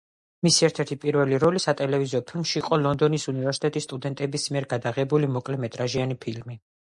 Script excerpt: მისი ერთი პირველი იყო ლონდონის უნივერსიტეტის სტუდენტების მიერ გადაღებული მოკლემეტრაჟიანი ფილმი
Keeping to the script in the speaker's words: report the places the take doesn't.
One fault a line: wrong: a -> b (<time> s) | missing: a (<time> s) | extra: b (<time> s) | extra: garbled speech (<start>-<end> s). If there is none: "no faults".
extra: ერთ (0.7 s)
extra: როლი სატელევიზიო ფილმში (1.4 s)